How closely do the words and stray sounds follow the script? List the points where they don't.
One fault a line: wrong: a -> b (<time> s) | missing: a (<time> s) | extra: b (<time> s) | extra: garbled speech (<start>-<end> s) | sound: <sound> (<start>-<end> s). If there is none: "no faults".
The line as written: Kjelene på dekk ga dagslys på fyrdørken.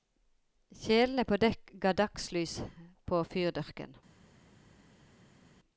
no faults